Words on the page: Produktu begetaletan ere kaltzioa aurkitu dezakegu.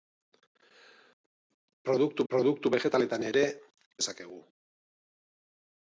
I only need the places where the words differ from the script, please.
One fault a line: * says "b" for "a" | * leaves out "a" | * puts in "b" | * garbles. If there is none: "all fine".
* puts in "produktu"
* leaves out "kaltzioa aurkitu"